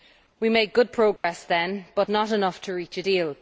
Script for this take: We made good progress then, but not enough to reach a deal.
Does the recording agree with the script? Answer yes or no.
yes